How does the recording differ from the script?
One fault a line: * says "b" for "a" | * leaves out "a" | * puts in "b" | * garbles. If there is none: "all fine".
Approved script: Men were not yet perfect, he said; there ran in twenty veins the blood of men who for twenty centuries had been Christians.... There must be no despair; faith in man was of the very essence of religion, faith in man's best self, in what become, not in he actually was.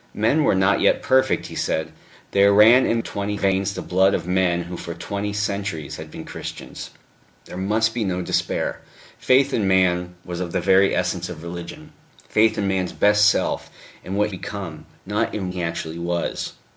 all fine